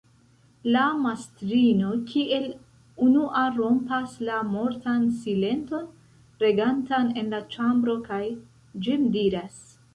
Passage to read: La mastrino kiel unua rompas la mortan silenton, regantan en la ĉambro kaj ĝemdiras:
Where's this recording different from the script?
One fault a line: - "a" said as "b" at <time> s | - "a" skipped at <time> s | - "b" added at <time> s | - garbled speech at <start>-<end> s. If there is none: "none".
none